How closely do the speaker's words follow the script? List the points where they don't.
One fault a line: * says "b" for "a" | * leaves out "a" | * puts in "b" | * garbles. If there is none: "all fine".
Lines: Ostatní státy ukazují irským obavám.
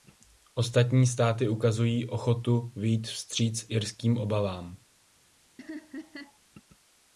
* puts in "ochotu vyjít vstříc"